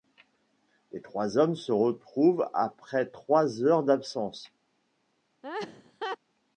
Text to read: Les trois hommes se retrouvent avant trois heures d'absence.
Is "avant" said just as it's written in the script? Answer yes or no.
no